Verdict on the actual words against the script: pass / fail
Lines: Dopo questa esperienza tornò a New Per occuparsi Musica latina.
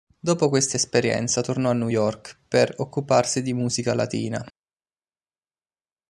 fail